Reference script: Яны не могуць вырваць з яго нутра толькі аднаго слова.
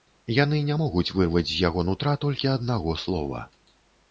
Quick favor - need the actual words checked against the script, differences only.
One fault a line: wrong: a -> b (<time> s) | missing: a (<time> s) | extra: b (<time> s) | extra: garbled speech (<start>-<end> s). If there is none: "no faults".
no faults